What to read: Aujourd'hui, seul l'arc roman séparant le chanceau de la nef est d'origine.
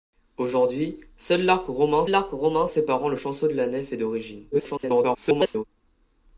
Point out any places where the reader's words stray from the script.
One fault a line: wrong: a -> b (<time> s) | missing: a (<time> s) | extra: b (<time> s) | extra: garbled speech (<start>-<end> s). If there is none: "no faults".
extra: l'arc roman (2.1 s)
extra: garbled speech (4.5-5.6 s)